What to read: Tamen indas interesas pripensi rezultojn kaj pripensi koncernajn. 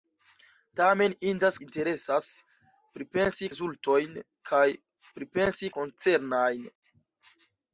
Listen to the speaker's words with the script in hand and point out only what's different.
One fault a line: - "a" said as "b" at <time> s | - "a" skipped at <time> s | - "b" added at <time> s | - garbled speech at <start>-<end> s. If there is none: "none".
none